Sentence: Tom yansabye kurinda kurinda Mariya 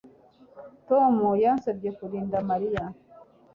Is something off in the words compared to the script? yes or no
yes